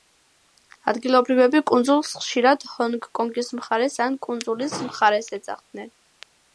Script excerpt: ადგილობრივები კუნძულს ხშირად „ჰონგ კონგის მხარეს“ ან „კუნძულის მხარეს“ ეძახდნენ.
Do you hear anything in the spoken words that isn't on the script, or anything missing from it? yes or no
no